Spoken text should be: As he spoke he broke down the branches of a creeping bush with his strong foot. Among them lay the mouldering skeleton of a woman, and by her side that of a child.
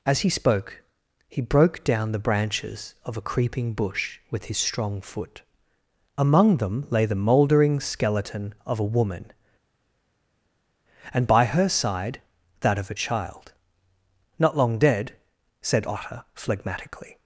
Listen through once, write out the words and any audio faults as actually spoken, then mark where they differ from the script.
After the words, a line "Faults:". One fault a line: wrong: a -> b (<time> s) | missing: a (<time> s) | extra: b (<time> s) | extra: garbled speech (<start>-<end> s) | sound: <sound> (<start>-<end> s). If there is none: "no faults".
As he spoke he broke down the branches of a creeping bush with his strong foot. Among them lay the mouldering skeleton of a woman, and by her side that of a child. "Not long dead," said Otter phlegmatically
Faults:
extra: Not long dead said Otter phlegmatically (14.4 s)